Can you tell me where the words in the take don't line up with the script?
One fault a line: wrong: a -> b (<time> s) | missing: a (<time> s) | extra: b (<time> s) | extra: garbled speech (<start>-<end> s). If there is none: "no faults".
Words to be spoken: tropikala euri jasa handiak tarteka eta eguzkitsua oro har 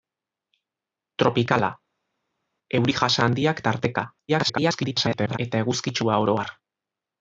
extra: garbled speech (4.3-5.4 s)